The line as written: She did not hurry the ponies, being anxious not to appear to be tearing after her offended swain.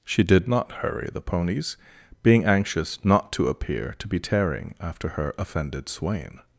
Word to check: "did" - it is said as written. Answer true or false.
true